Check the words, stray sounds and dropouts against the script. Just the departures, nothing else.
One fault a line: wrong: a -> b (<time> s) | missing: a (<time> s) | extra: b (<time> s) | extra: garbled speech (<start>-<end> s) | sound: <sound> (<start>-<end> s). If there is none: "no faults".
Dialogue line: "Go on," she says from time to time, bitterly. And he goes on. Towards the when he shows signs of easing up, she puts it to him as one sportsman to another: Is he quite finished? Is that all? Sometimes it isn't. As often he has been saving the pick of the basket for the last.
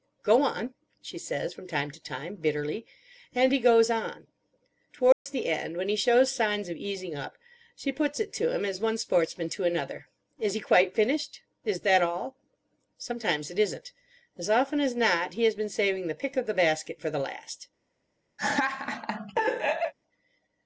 sound: dropout (5.1-5.3 s)
extra: end (5.5 s)
extra: as not (14.8 s)
sound: laugh (18.4-19.9 s)